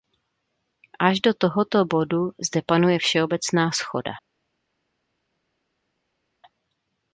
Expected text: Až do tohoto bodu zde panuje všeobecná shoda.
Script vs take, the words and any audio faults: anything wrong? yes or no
no